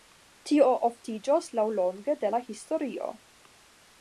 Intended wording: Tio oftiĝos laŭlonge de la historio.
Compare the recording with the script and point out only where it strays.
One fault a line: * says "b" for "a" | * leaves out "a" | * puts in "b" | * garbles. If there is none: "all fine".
all fine